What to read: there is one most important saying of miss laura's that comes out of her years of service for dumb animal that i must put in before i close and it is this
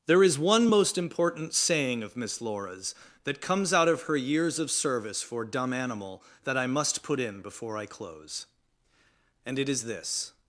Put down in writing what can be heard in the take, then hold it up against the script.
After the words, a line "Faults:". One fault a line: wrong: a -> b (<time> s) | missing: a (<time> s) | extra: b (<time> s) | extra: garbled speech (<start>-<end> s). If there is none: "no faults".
there is one most important saying of miss laura's that comes out of her years of service for dumb animal that i must put in before i close and it is this
Faults:
no faults